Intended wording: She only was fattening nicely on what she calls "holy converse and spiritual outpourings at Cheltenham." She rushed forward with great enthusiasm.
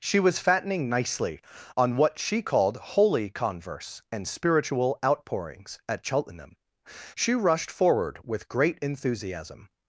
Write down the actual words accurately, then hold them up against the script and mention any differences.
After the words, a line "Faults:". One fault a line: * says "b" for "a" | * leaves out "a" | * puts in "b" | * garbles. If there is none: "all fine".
She was fattening nicely on what she called "holy converse and spiritual outpourings at Cheltenham." She rushed forward with great enthusiasm.
Faults:
* leaves out "only"
* says "called" for "calls"